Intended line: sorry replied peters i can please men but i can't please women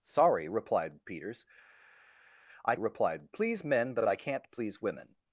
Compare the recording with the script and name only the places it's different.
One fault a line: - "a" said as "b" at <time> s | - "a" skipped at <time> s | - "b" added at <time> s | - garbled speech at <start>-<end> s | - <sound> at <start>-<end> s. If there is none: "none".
- "can" said as "replied" at 2.8 s
- "but" added at 4.0 s